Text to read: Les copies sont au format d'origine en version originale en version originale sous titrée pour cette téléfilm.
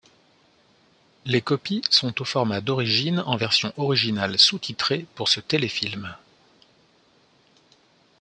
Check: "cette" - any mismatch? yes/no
yes